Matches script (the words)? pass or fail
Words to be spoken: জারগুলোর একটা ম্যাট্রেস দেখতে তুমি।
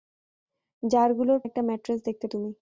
pass